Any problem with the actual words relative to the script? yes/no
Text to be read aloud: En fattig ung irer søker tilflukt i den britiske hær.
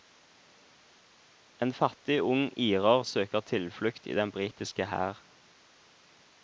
no